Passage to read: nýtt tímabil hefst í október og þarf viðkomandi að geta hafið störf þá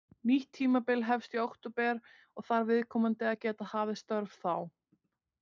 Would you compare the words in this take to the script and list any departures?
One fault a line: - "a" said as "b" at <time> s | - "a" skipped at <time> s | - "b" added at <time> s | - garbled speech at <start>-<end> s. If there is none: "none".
none